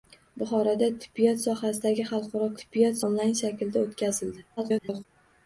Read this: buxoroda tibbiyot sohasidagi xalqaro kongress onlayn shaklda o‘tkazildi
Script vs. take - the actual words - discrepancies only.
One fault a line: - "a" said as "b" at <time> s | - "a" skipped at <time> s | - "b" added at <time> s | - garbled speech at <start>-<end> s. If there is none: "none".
- "kongress" said as "tibbiyot" at 2.6 s
- garbled speech at 4.6-5.1 s